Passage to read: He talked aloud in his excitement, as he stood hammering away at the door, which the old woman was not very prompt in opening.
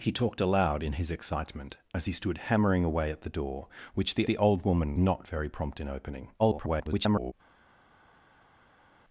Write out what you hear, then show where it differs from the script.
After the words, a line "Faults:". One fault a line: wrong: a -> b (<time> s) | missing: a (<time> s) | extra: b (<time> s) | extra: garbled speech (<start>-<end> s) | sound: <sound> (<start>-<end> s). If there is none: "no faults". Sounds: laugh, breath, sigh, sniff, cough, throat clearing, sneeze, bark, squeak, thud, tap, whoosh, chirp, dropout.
He talked aloud in his excitement, as he stood hammering away at the door, which the the old woman not very prompt in opening. [garbled]
Faults:
extra: the (4.2 s)
missing: was (5.0 s)
extra: garbled speech (6.4-7.3 s)